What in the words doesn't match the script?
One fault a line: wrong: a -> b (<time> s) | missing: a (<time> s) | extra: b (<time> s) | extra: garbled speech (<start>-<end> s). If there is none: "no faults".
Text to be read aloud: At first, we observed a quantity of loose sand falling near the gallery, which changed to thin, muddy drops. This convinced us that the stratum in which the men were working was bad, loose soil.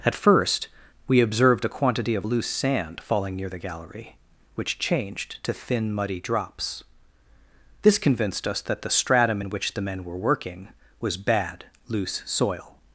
no faults